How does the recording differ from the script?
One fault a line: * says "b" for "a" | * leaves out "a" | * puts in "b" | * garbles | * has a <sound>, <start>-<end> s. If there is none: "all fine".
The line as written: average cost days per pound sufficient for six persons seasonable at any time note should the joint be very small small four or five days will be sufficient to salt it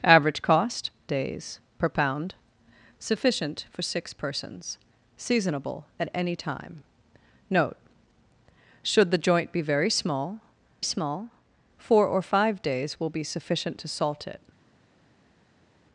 all fine